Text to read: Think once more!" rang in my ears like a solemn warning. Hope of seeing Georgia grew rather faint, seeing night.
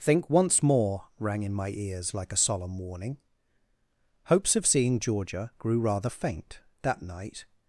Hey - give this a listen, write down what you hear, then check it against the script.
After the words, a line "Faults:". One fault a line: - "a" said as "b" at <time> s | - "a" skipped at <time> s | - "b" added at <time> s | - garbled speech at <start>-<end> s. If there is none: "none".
Think once more!" rang in my ears like a solemn warning. Hopes of seeing Georgia grew rather faint, that night.
Faults:
- "Hope" said as "Hopes" at 4.3 s
- "seeing" said as "that" at 6.8 s